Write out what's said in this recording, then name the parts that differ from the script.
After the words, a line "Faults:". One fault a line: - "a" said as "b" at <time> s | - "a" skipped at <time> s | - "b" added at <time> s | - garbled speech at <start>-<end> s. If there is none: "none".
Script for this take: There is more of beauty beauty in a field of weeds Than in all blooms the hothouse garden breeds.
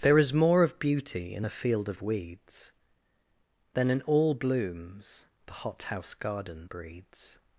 There is more of beauty in a field of weeds Than in all blooms the hothouse garden breeds.
Faults:
- "beauty" skipped at 1.4 s